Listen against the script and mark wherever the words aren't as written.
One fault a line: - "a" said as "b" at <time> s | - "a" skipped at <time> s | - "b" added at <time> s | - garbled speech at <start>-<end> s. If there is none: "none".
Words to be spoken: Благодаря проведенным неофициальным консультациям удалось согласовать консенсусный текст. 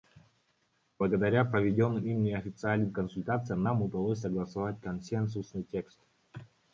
- "им" added at 2.0 s
- "нам" added at 3.6 s